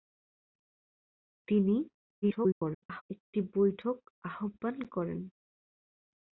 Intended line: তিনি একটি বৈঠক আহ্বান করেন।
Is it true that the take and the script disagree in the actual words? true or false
true